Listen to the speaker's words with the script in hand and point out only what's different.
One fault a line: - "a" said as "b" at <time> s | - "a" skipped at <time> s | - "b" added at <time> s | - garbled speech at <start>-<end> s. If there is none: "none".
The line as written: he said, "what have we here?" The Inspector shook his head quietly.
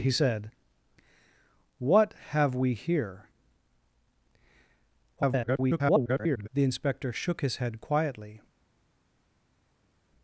- garbled speech at 5.2-6.5 s